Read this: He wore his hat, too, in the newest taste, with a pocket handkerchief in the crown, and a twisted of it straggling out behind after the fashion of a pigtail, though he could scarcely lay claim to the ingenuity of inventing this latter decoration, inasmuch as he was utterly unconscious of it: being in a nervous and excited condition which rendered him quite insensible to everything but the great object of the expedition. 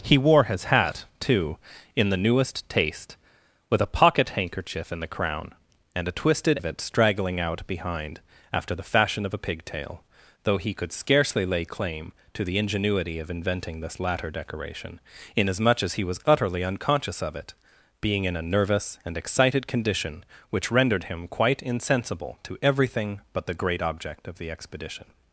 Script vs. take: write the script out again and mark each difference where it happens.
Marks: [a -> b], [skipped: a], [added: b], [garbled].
He wore his hat, too, in the newest taste, with a pocket handkerchief in the crown, and a twisted of it straggling out behind after the fashion of a pigtail, though he could scarcely lay claim to the ingenuity of inventing this latter decoration, inasmuch as he was utterly unconscious of it: being in a nervous and excited condition which rendered him quite insensible to everything but the great object of the expedition.